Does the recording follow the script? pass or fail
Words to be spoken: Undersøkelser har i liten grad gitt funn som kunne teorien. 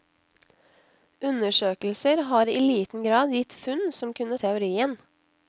pass